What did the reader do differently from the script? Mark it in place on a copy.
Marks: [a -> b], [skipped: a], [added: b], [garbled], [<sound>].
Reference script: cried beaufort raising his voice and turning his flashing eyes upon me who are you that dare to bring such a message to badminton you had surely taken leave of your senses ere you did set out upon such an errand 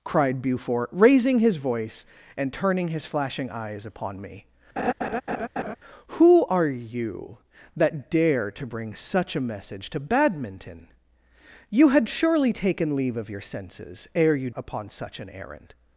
cried beaufort raising his voice and turning his flashing eyes upon me [laugh] who are you that dare to bring such a message to badminton you had surely taken leave of your senses ere you [skipped: did set out] upon such an errand